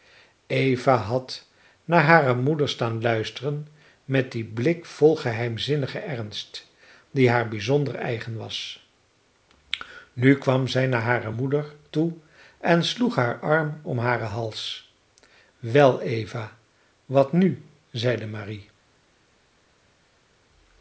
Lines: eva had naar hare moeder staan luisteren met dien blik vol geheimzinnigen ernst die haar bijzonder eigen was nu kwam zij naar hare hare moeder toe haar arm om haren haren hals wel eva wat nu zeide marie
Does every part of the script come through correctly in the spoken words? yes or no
no